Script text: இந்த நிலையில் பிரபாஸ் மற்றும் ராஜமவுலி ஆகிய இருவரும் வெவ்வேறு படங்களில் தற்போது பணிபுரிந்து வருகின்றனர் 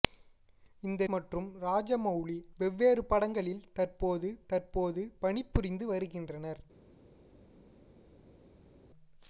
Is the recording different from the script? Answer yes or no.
yes